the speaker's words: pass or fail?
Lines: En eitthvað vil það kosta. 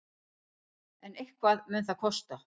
fail